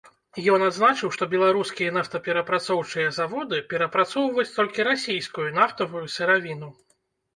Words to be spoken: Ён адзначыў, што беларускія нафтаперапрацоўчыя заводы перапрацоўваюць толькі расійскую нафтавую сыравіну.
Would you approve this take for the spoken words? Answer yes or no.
yes